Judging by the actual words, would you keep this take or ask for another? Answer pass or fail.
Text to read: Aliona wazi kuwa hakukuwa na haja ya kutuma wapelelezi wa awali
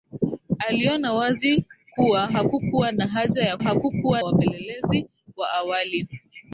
fail